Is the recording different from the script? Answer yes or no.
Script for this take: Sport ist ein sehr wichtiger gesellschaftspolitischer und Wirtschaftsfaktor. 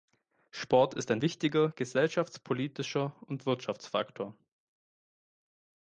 yes